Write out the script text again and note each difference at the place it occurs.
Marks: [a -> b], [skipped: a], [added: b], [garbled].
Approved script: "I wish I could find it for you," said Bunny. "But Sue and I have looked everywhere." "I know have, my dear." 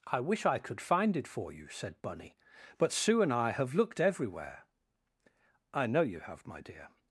"I wish I could find it for you," said Bunny. "But Sue and I have looked everywhere." "I know [added: you] have, my dear."